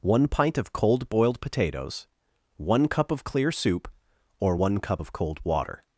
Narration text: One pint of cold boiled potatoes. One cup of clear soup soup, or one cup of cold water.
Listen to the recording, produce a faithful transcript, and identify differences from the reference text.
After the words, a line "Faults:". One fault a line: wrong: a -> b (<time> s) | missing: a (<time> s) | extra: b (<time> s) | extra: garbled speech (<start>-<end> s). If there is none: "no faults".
One pint of cold boiled potatoes. One cup of clear soup, or one cup of cold water.
Faults:
missing: soup (3.9 s)